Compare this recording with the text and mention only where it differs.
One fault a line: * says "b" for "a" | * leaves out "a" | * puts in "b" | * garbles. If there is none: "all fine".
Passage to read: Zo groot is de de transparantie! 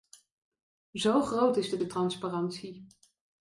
all fine